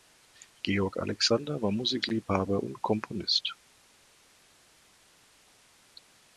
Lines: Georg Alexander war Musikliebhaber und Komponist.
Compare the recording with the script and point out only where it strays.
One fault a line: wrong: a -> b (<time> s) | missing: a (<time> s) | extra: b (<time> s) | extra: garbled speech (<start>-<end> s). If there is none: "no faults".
no faults